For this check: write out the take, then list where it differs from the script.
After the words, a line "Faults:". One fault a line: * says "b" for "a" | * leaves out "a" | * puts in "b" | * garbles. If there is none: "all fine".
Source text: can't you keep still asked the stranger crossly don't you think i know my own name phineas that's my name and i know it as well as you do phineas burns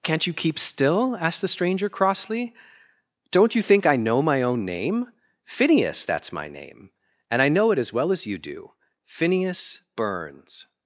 can't you keep still asked the stranger crossly don't you think i know my own name phineas that's my name and i know it as well as you do phineas burns
Faults:
all fine